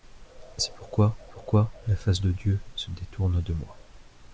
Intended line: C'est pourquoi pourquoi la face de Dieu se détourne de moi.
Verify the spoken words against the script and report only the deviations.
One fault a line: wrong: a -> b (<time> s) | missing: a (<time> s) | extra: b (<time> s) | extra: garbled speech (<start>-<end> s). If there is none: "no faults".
no faults